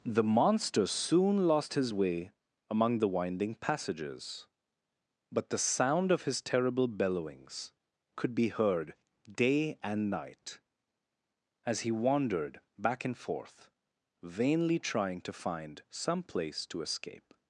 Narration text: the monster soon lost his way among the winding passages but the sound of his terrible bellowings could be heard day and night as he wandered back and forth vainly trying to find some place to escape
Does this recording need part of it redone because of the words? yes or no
no